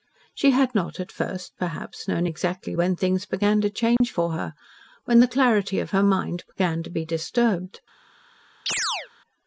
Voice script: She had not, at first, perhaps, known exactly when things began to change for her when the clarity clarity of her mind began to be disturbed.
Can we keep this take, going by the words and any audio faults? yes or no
no